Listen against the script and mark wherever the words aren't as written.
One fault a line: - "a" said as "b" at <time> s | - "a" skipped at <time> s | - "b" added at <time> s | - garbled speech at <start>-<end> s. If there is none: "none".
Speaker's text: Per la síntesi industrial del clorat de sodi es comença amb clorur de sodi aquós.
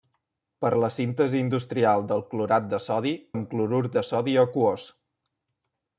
- "es comença" skipped at 3.1 s